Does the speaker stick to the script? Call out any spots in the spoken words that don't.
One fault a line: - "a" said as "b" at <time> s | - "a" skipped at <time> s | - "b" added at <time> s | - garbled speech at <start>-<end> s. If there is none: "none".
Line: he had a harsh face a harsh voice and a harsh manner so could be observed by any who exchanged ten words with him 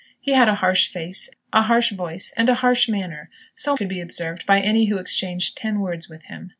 none